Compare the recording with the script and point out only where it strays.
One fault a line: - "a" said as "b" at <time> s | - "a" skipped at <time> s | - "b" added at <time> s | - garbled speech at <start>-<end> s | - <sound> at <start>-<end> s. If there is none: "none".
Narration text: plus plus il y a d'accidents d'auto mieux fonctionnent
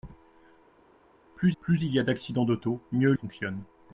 none